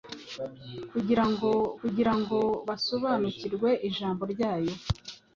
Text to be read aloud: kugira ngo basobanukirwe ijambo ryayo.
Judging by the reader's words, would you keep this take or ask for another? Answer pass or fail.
fail